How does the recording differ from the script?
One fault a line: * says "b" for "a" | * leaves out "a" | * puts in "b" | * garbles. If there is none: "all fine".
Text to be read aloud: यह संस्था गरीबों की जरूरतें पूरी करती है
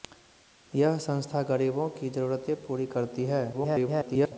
* garbles